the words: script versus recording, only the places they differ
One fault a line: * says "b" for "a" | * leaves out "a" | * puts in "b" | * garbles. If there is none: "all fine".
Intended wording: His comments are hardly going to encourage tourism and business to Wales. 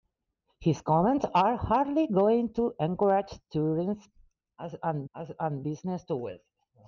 * puts in "and"